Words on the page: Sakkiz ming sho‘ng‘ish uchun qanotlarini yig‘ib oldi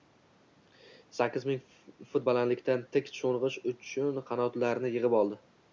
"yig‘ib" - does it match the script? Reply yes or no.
yes